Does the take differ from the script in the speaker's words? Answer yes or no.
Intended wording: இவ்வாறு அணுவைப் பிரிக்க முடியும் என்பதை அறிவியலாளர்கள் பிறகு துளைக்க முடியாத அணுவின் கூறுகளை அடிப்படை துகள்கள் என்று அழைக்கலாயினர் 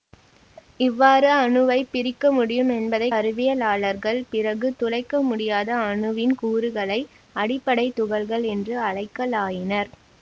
no